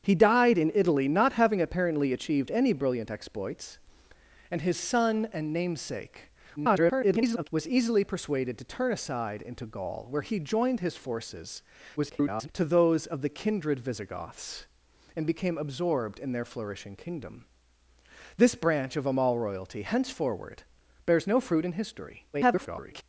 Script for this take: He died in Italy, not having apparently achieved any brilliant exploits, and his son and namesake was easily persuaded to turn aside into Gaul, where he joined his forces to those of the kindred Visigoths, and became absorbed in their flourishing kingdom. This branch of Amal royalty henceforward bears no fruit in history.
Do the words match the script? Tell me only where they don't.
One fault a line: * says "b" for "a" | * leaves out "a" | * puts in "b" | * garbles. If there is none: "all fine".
* garbles
* garbles
* garbles